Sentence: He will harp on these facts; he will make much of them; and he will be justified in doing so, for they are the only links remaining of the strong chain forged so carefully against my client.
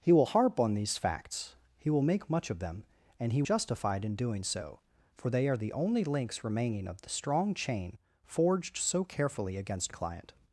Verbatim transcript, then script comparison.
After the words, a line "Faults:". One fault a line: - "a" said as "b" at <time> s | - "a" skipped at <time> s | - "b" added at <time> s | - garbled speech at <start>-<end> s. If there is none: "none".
He will harp on these facts; he will make much of them; and he justified in doing so, for they are the only links remaining of the strong chain forged so carefully against client.
Faults:
- "will be" skipped at 3.4 s
- "my" skipped at 9.9 s